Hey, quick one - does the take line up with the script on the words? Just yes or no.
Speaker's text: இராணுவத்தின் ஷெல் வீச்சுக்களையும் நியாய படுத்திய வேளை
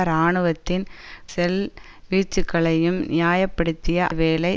yes